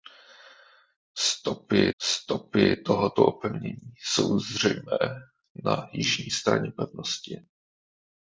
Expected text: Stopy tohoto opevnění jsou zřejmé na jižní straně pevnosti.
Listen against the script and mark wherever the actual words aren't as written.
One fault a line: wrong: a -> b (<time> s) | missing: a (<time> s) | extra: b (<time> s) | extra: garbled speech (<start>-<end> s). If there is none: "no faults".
extra: stopy (2.0 s)